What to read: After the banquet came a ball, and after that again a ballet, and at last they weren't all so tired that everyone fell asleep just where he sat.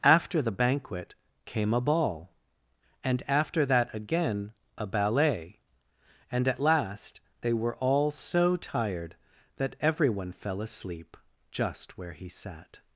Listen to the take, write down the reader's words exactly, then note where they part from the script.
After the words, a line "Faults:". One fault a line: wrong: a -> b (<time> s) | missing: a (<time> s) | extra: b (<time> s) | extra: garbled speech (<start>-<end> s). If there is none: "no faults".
After the banquet came a ball, and after that again a ballet, and at last they were all so tired that everyone fell asleep just where he sat.
Faults:
wrong: weren't -> were (7.5 s)